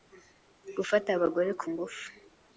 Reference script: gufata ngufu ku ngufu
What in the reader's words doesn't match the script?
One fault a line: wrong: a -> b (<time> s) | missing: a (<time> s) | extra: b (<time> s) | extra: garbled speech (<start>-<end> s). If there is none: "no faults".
wrong: ngufu -> abagore (1.2 s)